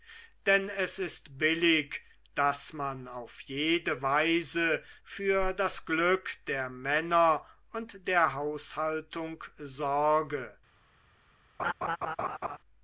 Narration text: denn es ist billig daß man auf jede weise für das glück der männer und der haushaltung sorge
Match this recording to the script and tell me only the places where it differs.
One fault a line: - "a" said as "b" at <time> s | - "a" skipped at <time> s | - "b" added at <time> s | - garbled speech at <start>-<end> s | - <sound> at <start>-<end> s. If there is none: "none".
- laugh at 11.6-12.6 s